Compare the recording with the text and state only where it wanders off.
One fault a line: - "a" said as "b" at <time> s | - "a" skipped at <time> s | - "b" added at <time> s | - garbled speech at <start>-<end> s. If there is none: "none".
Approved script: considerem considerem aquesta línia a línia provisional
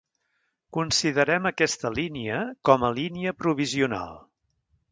- "considerem" skipped at 1.4 s
- "com" added at 2.7 s